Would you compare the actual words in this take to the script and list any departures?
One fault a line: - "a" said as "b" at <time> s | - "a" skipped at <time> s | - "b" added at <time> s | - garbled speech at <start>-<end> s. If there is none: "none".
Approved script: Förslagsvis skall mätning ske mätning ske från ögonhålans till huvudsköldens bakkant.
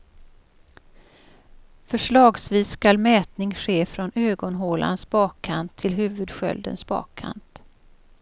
- "mätning ske" skipped at 3.9 s
- "bakkant" added at 5.1 s